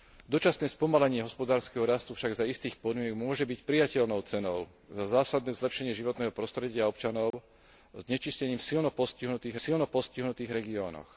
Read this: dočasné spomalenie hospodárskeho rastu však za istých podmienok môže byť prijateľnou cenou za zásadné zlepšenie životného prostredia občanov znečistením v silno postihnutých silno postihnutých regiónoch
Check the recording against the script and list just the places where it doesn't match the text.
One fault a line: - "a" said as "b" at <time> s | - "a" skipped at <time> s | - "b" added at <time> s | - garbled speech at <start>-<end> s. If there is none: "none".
none